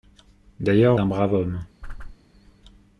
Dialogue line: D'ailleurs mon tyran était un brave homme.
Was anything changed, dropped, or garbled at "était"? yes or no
yes